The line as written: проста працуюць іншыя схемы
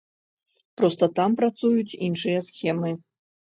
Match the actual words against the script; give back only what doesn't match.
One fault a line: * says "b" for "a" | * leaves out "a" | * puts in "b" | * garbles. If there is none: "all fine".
* puts in "там"